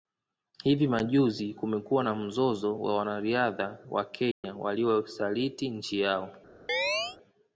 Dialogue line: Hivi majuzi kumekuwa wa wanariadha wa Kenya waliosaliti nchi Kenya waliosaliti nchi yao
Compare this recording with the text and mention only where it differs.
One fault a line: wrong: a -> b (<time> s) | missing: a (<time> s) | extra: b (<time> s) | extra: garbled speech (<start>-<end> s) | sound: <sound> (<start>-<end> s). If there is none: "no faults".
extra: na mzozo (2.0 s)
sound: dropout (4.3-4.4 s)
missing: Kenya waliosaliti nchi (6.0 s)
sound: chirp (6.7-7.2 s)